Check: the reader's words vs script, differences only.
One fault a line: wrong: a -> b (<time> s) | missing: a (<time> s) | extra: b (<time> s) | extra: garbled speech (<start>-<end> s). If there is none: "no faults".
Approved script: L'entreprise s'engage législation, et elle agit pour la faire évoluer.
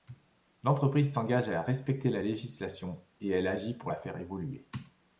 extra: à respecter la (1.5 s)